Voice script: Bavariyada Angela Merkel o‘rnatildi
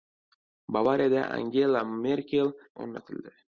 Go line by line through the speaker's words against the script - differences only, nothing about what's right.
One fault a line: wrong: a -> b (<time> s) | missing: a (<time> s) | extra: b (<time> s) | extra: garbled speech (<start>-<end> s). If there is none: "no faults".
no faults